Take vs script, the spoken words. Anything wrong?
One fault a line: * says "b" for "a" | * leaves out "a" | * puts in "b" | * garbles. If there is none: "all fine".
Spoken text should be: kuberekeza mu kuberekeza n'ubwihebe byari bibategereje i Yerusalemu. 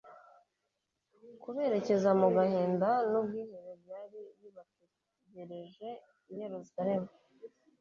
* says "gahinda" for "kuberekeza"